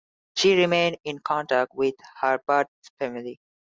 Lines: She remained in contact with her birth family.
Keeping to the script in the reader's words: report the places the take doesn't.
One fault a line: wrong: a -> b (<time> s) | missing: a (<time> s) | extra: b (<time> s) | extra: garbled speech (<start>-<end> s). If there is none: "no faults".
no faults